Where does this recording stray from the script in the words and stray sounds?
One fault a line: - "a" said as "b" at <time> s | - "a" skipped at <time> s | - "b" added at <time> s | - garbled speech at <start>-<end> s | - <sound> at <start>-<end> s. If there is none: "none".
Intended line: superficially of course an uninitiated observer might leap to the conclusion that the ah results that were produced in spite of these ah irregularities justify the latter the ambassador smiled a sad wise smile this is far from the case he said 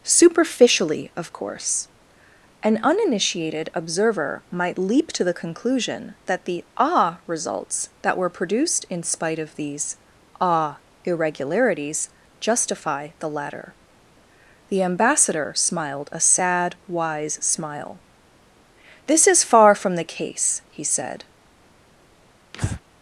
- breath at 22.5-22.8 s